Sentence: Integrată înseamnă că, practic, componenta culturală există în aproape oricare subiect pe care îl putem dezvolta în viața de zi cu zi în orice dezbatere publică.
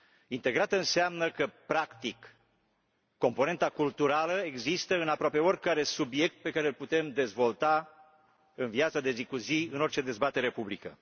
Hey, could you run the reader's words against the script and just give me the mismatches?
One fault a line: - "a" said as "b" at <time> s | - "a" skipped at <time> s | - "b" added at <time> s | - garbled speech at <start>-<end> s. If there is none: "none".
none